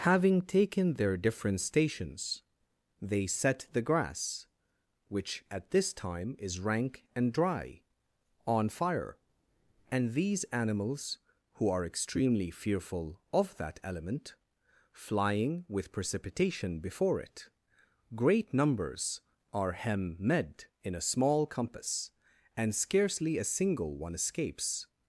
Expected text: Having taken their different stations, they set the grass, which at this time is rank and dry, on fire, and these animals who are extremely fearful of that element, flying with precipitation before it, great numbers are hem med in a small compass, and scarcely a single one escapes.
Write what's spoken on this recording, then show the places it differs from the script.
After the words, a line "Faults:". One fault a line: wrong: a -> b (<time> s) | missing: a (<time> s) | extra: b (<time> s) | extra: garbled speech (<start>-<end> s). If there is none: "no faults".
Having taken their different stations, they set the grass, which at this time is rank and dry, on fire, and these animals who are extremely fearful of that element, flying with precipitation before it, great numbers are hem med in a small compass, and scarcely a single one escapes.
Faults:
no faults